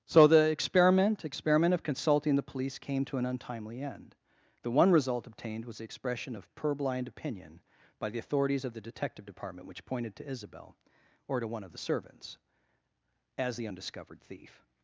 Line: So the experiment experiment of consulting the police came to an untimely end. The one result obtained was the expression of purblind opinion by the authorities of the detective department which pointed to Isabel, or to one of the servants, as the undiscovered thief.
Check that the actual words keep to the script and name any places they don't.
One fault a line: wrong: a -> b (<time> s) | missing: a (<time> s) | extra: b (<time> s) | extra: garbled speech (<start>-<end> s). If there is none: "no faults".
no faults